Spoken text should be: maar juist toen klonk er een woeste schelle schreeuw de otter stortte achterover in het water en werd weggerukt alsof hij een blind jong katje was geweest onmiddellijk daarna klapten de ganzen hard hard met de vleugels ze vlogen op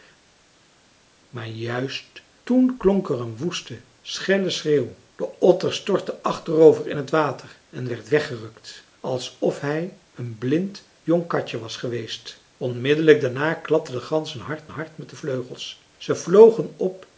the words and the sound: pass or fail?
pass